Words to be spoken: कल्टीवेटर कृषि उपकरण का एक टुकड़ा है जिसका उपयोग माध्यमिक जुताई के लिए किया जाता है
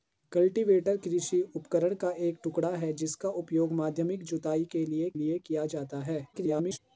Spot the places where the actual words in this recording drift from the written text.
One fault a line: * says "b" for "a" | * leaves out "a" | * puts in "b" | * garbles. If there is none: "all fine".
* puts in "लिए"
* garbles